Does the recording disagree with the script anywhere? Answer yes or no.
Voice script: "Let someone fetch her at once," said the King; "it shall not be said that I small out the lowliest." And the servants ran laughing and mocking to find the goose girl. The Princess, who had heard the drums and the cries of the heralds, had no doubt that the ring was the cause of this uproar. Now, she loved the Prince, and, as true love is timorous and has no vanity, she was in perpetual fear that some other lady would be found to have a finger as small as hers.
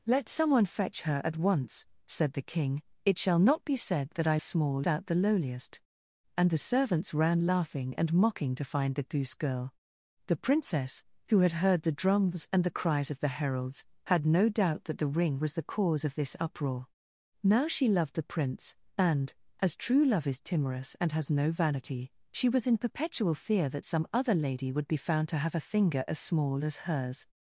no